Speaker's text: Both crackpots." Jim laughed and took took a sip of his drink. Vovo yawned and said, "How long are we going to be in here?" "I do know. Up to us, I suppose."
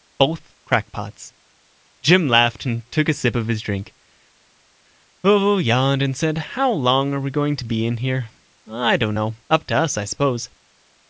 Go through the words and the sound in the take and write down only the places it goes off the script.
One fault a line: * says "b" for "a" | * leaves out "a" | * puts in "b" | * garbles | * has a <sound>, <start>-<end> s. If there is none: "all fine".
* leaves out "took"
* says "don't" for "do"